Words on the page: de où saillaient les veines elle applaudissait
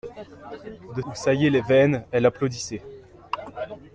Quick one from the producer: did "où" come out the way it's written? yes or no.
yes